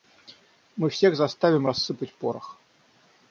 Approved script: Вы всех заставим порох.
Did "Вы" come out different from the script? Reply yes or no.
yes